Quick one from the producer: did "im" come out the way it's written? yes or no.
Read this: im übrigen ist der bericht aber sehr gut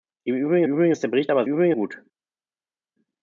yes